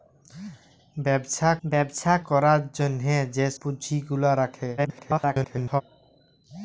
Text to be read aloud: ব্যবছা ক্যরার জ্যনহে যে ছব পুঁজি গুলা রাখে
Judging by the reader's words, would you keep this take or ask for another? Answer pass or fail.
fail